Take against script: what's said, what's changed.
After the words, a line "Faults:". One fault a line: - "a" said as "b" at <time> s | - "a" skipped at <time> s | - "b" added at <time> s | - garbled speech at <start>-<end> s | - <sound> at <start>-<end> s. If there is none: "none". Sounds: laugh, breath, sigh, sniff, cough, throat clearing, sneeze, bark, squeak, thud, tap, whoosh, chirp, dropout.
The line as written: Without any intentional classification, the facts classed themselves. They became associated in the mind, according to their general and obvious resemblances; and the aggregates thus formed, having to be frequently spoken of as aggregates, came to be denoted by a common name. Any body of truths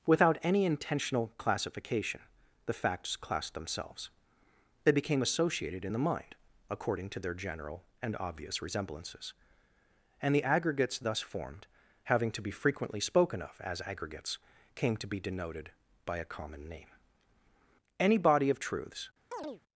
Without any intentional classification, the facts classed themselves. They became associated in the mind, according to their general and obvious resemblances; and the aggregates thus formed, having to be frequently spoken of as aggregates, came to be denoted by a common name. Any body of truths
Faults:
- chirp at 19.3-19.6 s